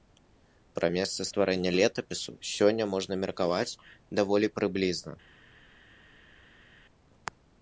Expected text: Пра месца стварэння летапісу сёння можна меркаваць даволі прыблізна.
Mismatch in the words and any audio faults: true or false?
false